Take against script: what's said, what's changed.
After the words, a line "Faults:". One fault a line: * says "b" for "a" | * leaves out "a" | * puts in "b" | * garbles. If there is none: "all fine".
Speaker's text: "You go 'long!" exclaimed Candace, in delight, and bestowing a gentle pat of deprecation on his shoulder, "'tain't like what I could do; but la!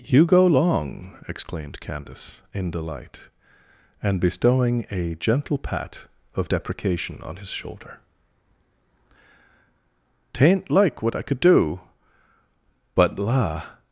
"You go 'long!" exclaimed Candace, in delight, and bestowing a gentle pat of deprecation on his shoulder, "'tain't like what I could do; but la!
Faults:
all fine